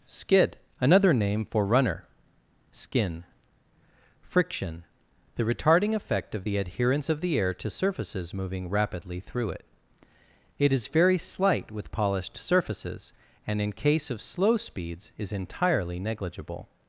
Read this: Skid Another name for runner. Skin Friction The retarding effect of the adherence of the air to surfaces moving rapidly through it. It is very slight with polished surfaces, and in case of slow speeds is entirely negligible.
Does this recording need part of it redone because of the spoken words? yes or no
no